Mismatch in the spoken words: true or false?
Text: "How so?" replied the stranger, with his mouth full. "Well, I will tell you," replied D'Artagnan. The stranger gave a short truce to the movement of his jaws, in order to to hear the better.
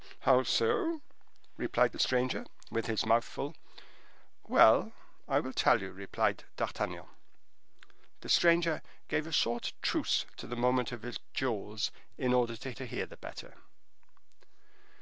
false